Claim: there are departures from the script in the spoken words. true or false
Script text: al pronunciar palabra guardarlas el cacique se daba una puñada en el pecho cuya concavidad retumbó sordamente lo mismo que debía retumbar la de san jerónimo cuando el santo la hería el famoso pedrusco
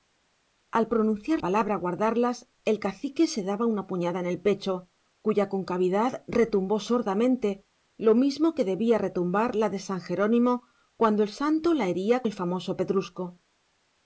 false